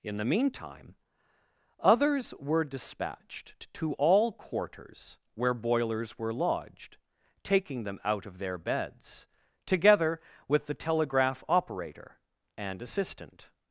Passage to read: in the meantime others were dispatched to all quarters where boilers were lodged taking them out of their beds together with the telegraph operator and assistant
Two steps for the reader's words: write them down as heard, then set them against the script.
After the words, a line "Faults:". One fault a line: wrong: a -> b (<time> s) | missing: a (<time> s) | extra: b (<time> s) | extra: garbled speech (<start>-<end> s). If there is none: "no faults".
in the meantime others were dispatched to all quarters where boilers were lodged taking them out of their beds together with the telegraph operator and assistant
Faults:
no faults